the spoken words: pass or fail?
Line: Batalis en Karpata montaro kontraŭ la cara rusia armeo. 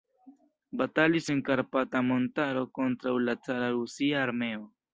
pass